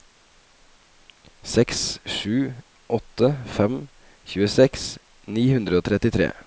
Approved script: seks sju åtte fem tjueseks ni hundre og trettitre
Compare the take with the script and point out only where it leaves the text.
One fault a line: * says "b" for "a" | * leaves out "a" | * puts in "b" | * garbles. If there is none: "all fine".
all fine